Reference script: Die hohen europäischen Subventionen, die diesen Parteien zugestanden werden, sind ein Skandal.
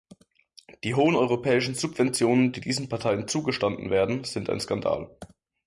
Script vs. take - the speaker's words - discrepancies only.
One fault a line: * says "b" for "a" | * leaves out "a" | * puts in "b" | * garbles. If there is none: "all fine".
all fine